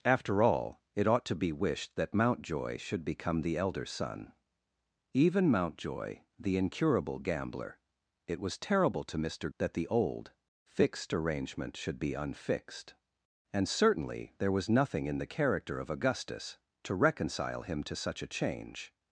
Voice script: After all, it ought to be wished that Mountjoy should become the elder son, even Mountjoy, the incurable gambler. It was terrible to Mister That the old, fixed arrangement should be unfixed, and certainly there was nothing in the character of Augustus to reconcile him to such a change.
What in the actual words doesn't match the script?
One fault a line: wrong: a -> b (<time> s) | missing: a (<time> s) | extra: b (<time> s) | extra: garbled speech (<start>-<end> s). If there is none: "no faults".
no faults